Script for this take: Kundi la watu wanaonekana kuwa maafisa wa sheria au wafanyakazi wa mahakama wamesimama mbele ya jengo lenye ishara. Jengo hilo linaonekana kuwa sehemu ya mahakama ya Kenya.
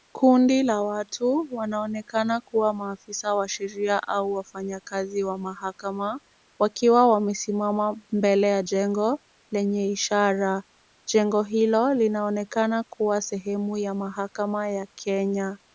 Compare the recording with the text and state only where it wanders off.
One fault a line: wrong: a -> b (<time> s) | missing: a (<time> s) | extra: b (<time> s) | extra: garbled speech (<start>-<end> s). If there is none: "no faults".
extra: wakiwa (6.6 s)